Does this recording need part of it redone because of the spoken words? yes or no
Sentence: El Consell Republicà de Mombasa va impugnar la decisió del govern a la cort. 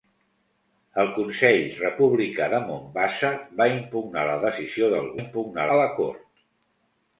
yes